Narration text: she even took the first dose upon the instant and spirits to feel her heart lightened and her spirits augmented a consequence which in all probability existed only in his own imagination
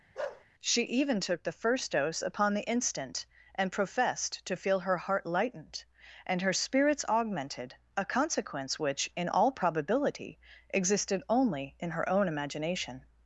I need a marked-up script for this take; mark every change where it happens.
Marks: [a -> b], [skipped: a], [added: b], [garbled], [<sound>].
[bark] she even took the first dose upon the instant and [spirits -> professed] to feel her heart lightened and her spirits augmented a consequence which in all probability existed only in [his -> her] own imagination